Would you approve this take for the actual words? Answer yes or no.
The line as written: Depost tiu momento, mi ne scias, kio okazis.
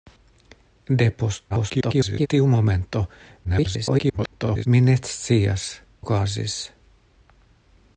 no